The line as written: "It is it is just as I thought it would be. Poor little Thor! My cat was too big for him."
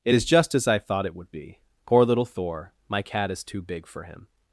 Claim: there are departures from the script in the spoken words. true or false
true